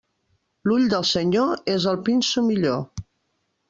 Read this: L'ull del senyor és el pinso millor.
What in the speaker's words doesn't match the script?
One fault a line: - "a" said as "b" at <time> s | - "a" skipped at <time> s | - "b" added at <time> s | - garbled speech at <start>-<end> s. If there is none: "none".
none